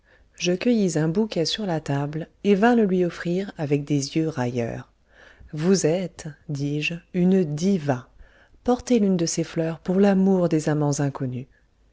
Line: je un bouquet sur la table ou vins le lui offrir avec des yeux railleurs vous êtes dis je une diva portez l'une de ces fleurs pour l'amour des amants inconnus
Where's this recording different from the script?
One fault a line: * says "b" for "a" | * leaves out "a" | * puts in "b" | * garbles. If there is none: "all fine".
* puts in "cueillis"
* says "et" for "ou"